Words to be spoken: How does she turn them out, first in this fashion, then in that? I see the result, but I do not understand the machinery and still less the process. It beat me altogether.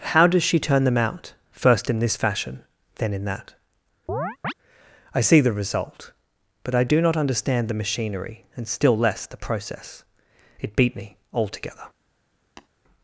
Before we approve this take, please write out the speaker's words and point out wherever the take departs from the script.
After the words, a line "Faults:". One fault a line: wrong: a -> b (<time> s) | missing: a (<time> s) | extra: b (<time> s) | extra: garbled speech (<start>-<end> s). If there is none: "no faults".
How does she turn them out, first in this fashion, then in that? I see the result, but I do not understand the machinery and still less the process. It beat me altogether.
Faults:
no faults